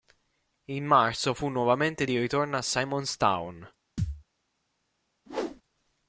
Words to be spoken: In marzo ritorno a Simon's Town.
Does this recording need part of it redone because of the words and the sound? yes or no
yes